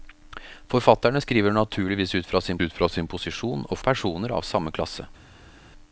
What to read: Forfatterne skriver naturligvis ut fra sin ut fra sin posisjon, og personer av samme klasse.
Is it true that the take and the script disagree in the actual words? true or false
false